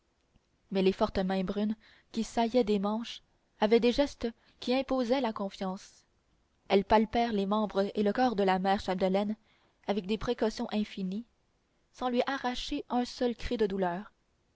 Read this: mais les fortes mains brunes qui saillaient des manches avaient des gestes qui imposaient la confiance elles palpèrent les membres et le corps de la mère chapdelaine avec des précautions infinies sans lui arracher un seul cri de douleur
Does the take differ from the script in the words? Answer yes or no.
no